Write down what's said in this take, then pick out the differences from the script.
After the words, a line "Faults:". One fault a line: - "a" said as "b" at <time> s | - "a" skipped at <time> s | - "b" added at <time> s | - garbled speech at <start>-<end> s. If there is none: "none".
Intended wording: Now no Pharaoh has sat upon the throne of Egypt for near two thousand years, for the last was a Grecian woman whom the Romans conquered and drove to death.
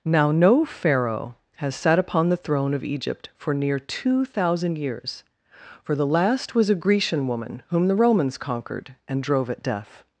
Now no Pharaoh has sat upon the throne of Egypt for near two thousand years, for the last was a Grecian woman whom the Romans conquered and drove at death.
Faults:
- "to" said as "at" at 9.5 s